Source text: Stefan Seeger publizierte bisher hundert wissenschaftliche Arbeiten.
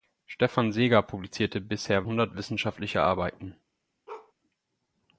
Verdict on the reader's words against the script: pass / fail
pass